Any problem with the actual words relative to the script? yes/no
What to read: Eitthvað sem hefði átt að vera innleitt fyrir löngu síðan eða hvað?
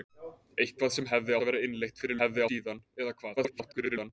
yes